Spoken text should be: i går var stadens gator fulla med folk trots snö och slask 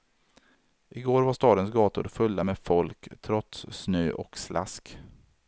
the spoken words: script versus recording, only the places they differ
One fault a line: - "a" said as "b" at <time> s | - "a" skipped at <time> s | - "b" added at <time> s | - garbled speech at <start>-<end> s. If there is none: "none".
none